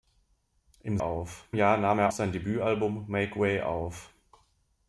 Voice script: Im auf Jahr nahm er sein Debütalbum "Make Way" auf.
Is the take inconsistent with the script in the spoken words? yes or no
no